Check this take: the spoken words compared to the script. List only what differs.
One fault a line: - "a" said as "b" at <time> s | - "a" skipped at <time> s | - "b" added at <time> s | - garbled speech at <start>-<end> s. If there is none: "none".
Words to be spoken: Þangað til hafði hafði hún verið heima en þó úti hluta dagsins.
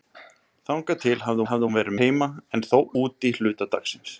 none